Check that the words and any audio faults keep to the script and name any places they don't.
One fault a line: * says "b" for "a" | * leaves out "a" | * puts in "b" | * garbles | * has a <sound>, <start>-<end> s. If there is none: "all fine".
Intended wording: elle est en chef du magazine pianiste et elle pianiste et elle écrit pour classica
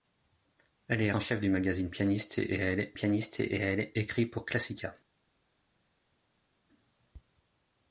all fine